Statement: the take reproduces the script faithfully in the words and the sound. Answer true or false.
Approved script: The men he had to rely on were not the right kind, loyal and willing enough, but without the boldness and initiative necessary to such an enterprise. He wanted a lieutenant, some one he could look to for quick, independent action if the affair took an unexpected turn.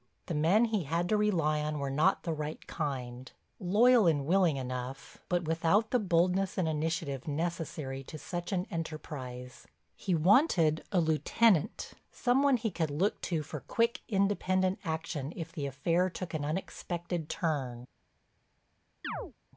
false